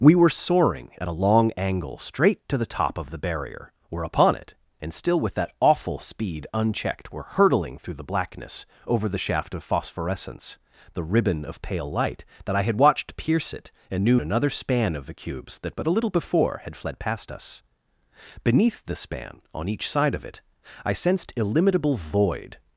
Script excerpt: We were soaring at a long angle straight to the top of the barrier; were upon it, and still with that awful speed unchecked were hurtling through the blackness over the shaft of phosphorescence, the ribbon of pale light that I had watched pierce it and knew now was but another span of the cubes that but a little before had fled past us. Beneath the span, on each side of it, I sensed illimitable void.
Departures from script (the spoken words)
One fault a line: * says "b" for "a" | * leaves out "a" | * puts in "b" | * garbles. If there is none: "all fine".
* leaves out "now was but"